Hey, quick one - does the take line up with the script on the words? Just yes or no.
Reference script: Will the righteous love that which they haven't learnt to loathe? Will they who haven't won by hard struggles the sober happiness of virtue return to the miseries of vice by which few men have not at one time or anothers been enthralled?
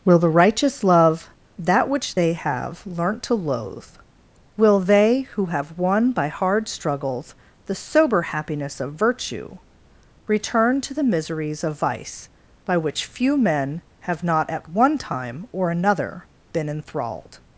no